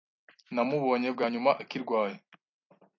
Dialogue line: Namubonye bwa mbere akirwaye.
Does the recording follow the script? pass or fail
fail